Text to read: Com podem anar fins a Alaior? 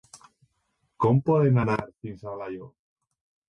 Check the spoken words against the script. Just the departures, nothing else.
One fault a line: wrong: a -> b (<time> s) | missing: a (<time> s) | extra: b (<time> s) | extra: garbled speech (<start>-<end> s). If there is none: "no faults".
no faults